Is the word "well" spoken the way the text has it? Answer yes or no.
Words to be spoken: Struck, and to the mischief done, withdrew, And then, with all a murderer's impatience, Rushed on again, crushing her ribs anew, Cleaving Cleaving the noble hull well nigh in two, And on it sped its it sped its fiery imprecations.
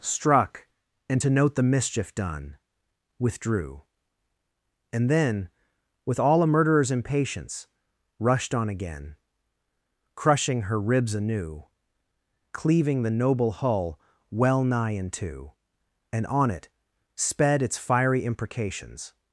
yes